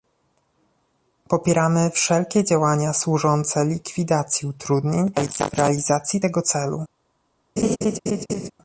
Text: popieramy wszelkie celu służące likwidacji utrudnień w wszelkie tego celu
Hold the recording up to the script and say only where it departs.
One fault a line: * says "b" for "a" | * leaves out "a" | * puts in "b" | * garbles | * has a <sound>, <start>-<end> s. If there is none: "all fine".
* says "działania" for "celu"
* says "realizacji" for "wszelkie"
* has a laugh, 7.6-8.5 s